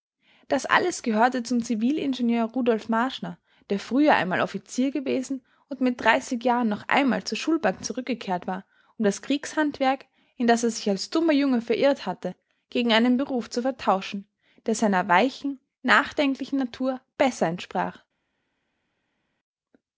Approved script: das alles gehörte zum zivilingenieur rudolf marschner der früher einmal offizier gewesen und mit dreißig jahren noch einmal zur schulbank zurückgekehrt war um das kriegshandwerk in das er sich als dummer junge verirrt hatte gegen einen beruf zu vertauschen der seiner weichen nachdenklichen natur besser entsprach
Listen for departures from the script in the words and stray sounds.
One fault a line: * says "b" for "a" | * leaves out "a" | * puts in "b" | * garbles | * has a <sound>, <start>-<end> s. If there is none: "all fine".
all fine